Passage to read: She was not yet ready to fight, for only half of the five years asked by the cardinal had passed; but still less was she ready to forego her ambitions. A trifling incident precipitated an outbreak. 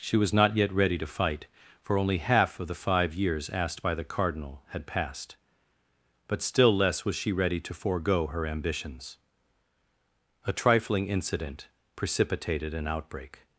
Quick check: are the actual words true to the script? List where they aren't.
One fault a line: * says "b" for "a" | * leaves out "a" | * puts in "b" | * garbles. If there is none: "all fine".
all fine